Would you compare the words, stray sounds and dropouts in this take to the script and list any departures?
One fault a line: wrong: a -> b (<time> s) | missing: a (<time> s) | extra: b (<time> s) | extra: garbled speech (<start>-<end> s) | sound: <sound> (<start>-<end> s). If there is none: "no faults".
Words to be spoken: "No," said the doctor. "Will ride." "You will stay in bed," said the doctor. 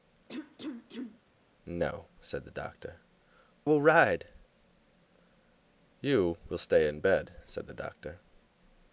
sound: cough (0.3-1.2 s)